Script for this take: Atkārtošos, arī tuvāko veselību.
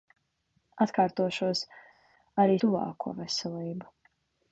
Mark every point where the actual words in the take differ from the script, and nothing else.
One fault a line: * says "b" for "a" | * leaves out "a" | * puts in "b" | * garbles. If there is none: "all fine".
all fine